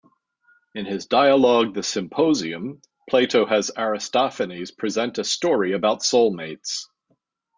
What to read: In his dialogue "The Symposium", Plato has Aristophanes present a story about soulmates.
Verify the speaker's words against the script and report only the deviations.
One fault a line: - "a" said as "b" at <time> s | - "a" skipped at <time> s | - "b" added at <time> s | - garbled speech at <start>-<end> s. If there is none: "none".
none